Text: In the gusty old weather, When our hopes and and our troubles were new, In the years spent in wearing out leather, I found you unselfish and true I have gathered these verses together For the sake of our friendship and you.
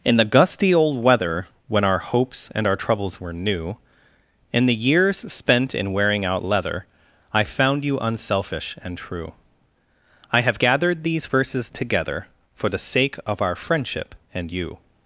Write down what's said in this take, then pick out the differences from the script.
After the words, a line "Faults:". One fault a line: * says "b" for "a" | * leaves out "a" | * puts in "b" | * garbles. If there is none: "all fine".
In the gusty old weather, When our hopes and our troubles were new, In the years spent in wearing out leather, I found you unselfish and true I have gathered these verses together For the sake of our friendship and you.
Faults:
* leaves out "and"